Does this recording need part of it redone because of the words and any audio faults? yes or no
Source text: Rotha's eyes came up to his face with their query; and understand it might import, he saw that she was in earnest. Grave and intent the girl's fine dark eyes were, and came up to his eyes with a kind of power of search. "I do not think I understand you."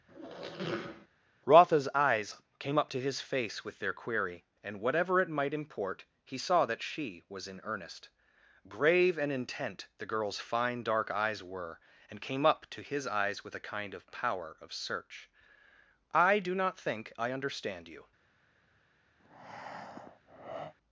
yes